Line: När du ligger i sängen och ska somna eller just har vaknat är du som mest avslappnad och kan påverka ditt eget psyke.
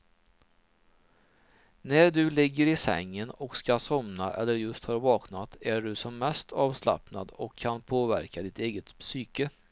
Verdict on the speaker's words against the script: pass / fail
pass